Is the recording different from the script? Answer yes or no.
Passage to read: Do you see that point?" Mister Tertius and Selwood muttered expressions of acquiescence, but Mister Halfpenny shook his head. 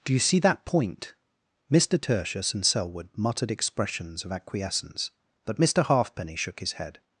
no